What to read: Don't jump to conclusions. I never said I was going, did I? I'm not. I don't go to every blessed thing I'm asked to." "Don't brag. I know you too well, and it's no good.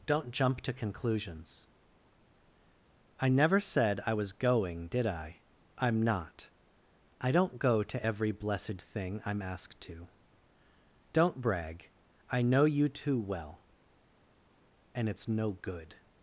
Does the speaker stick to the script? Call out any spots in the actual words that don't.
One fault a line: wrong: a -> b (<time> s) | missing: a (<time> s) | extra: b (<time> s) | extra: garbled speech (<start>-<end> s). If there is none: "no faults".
no faults